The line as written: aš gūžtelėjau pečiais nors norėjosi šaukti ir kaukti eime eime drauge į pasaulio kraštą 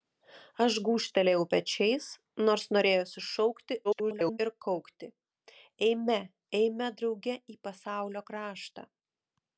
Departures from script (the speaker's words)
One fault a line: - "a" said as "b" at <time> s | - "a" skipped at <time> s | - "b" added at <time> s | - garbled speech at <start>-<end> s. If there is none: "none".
- garbled speech at 3.8-4.4 s